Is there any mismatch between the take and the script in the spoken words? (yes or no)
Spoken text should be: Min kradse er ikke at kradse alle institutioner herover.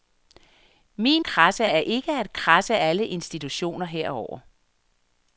no